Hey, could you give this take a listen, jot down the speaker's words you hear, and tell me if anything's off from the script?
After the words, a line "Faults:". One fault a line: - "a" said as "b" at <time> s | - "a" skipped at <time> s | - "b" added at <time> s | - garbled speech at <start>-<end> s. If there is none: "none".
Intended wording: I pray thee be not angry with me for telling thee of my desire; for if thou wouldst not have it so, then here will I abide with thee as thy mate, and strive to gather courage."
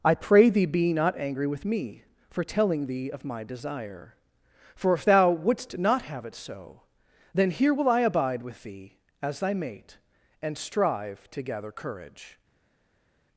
I pray thee be not angry with me for telling thee of my desire; for if thou wouldst not have it so, then here will I abide with thee as thy mate, and strive to gather courage."
Faults:
none